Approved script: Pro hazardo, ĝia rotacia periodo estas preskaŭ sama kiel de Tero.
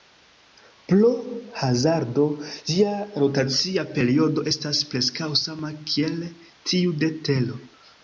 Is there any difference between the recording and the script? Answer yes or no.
yes